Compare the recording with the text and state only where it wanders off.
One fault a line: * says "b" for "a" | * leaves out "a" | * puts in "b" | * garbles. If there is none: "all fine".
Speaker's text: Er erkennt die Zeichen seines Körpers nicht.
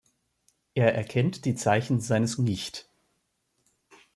* leaves out "Körpers"